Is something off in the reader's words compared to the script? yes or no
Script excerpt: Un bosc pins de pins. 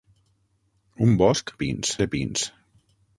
no